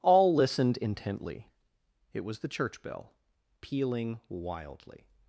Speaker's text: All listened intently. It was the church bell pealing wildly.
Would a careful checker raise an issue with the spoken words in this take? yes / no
no